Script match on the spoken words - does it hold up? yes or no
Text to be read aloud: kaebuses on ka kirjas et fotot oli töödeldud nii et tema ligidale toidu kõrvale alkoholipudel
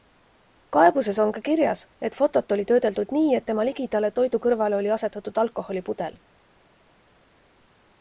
no